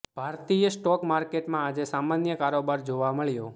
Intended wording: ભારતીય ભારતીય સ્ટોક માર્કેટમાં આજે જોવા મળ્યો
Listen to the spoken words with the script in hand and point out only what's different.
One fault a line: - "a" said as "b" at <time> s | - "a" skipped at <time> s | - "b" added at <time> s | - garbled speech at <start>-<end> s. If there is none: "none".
- "ભારતીય" skipped at 0.7 s
- "સામાન્ય કારોબાર" added at 1.9 s